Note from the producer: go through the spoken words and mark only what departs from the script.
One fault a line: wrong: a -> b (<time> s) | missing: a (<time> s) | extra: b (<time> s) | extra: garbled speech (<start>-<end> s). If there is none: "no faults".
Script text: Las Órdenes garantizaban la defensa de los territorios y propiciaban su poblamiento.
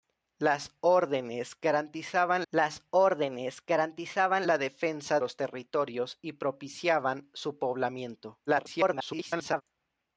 extra: las Órdenes garantizaban (2.5 s)
missing: de (5.2 s)
extra: garbled speech (8.5-9.6 s)